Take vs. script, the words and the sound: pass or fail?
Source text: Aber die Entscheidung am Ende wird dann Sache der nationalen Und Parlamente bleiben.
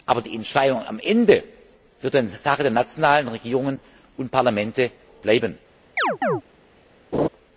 fail